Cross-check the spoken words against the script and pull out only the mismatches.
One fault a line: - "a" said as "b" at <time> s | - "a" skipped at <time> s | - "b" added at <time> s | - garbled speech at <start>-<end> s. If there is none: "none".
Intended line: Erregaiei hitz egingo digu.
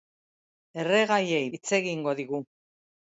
none